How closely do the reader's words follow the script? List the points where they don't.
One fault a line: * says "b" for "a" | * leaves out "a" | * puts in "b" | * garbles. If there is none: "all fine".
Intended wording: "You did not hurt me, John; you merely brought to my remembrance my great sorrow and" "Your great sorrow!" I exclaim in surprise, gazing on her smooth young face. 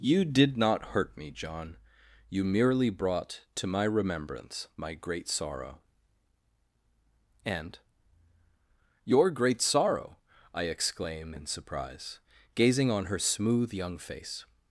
all fine